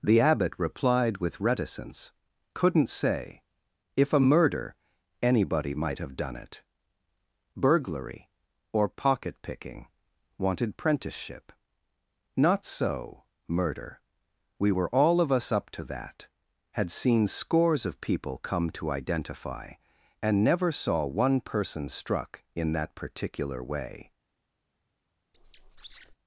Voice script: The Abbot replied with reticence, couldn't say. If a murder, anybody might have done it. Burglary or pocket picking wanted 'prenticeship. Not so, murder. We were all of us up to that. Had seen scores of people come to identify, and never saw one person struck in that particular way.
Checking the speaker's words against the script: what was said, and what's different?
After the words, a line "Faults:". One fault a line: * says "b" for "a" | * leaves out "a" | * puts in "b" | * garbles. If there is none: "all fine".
The Abbot replied with reticence, couldn't say. If a murder, anybody might have done it. Burglary or pocket picking wanted 'prenticeship. Not so, murder. We were all of us up to that. Had seen scores of people come to identify, and never saw one person struck in that particular way.
Faults:
all fine